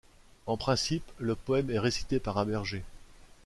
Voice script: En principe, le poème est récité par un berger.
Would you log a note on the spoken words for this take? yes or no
no